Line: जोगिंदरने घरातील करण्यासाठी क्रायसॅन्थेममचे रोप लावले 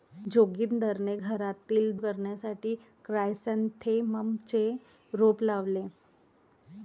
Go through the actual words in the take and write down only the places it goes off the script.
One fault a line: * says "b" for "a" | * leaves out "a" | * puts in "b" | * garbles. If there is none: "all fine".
all fine